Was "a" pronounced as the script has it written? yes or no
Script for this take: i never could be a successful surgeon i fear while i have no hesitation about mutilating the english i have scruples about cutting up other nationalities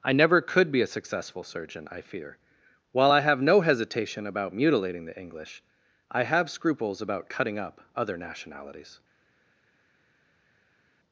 yes